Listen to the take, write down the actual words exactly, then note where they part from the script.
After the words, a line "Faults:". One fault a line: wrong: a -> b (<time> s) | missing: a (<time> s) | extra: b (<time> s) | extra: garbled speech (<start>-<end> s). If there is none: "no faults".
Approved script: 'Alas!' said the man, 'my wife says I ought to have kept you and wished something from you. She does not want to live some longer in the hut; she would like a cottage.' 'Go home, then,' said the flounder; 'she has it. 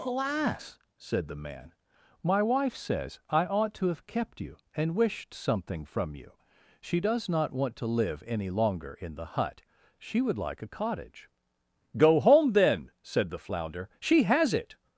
'Alas!' said the man, 'my wife says I ought to have kept you and wished something from you. She does not want to live any longer in the hut; she would like a cottage.' 'Go home, then,' said the flounder; 'she has it.
Faults:
wrong: some -> any (8.2 s)